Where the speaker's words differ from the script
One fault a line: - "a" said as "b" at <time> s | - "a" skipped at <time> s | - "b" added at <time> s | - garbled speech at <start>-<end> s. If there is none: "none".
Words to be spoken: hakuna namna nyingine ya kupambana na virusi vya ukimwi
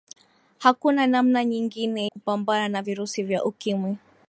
- "ya" skipped at 2.1 s